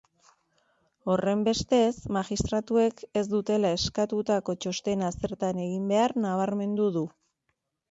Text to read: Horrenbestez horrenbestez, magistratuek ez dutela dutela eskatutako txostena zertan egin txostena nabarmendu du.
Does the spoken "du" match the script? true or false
true